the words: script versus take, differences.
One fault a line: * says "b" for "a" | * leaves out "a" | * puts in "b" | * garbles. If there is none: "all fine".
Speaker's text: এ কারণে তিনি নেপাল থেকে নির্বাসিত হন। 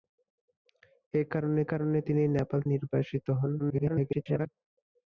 * puts in "কারণে"
* leaves out "থেকে"
* garbles